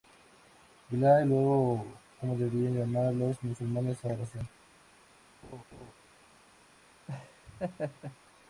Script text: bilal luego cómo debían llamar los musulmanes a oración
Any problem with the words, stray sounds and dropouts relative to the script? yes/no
yes